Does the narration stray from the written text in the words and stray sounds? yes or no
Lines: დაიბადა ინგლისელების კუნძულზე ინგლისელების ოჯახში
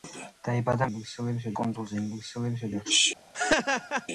yes